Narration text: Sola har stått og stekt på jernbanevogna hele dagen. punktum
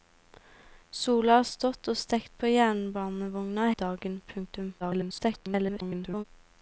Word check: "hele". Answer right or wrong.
wrong